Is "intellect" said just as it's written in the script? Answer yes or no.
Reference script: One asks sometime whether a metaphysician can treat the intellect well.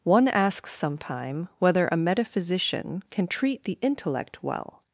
yes